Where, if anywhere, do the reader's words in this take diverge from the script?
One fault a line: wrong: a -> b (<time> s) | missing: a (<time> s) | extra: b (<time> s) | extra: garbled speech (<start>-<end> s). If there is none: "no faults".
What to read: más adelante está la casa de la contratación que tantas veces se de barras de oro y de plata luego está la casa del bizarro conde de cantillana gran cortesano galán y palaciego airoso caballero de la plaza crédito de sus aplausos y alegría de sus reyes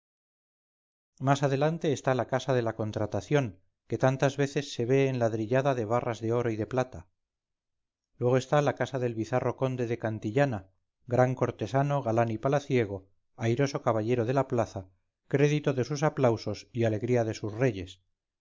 extra: ve enladrillada (4.8 s)